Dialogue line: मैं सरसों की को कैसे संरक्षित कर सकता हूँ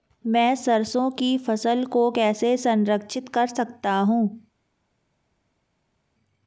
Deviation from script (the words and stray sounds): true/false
true